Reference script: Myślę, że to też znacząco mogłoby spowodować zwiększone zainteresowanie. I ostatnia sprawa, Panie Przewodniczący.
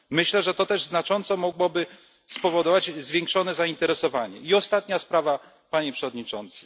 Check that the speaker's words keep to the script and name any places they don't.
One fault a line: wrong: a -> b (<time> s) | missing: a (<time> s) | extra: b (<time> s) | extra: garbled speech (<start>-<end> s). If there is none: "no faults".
no faults